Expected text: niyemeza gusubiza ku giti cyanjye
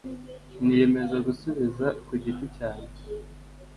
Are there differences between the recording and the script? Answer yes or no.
no